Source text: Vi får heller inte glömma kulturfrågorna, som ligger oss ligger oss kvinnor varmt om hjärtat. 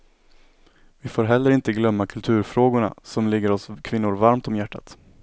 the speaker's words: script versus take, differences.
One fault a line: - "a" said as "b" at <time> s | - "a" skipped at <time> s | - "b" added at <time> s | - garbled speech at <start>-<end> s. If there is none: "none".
- "ligger oss" skipped at 3.7 s